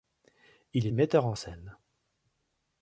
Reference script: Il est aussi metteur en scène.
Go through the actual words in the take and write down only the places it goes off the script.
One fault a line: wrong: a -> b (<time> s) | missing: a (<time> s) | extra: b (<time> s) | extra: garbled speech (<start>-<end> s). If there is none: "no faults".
missing: est aussi (0.9 s)